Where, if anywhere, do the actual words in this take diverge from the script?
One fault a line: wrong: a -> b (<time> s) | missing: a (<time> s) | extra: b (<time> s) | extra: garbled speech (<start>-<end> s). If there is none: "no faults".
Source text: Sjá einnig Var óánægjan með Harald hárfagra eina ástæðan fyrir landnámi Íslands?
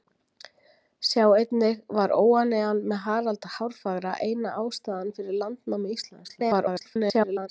extra: garbled speech (6.2-7.5 s)